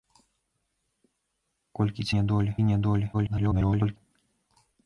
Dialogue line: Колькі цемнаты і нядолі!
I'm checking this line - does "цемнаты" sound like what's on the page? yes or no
no